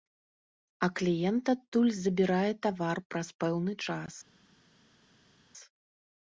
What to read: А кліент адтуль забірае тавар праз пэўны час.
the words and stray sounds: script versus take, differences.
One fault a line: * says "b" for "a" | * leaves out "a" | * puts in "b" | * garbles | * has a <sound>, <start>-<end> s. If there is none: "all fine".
all fine